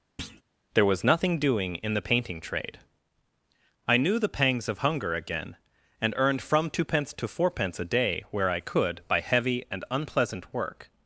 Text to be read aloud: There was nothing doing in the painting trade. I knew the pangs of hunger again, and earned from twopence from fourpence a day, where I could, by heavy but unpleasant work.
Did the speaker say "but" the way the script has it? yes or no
no